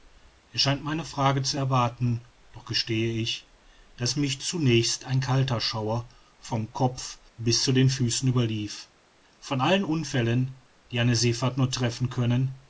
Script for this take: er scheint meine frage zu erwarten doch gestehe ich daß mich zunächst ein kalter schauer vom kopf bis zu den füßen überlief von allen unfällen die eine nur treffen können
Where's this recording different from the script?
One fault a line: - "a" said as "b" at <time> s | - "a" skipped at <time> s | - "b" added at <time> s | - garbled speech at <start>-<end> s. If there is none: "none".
- "seefahrt" added at 11.2 s